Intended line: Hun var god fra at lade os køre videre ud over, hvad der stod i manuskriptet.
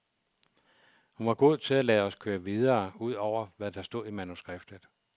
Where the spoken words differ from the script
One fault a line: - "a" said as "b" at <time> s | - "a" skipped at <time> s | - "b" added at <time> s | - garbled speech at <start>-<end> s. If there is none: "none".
- "fra" said as "til" at 1.6 s